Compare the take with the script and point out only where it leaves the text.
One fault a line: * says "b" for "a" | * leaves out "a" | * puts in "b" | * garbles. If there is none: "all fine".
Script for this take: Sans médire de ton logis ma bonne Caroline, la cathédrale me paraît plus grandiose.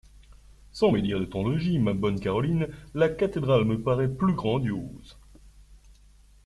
all fine